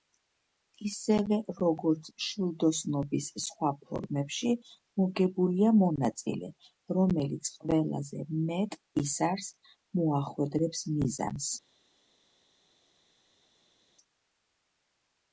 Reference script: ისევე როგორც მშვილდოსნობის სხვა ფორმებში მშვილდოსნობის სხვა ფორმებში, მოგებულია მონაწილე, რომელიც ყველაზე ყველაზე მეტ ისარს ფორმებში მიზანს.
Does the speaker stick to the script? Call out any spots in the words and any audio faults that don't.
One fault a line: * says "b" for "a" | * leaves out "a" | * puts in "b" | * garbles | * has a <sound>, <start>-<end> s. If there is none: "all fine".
* leaves out "მშვილდოსნობის სხვა ფორმებში"
* leaves out "ყველაზე"
* says "მოახვედრებს" for "ფორმებში"